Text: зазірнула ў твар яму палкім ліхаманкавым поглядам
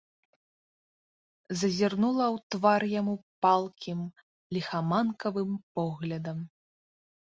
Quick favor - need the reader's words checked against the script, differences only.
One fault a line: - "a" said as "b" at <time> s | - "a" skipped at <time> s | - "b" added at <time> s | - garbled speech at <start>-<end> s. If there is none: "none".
none